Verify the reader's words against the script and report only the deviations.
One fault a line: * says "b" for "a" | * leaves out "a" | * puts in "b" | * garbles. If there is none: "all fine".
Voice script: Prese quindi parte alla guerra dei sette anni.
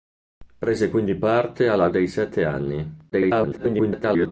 * leaves out "guerra"
* garbles